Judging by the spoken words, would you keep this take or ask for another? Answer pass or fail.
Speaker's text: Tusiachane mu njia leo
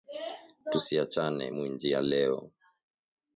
pass